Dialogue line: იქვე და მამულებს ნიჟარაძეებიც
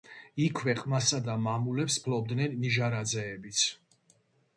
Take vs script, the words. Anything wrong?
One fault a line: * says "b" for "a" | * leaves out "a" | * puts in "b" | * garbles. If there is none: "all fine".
* puts in "ყმასა"
* puts in "ფლობდნენ"